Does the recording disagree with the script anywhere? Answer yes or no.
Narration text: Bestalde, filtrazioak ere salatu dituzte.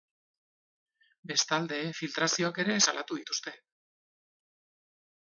no